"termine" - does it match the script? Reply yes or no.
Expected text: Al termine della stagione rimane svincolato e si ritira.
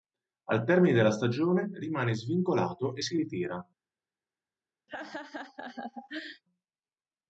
yes